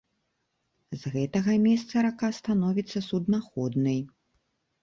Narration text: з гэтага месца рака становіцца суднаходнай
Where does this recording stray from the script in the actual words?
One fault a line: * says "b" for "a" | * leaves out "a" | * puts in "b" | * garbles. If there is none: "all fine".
all fine